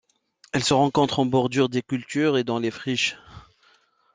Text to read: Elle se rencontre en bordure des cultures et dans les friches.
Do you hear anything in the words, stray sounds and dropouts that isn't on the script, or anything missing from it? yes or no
no